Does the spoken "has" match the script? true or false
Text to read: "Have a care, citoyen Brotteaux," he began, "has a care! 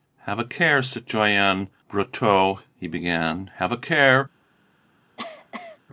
false